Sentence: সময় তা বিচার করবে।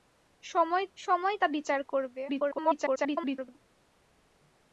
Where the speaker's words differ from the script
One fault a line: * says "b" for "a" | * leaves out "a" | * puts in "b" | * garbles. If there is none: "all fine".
* puts in "সময়"
* garbles